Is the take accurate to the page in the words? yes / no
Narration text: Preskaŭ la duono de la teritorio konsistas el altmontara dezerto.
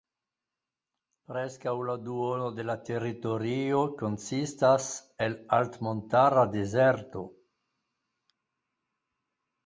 yes